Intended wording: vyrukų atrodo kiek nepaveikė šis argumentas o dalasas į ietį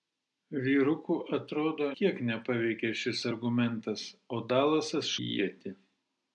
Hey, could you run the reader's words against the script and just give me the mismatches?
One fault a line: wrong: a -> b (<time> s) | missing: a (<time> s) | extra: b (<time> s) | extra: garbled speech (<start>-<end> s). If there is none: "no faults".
no faults